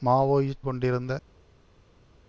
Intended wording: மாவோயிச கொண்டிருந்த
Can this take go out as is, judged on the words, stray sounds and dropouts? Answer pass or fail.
pass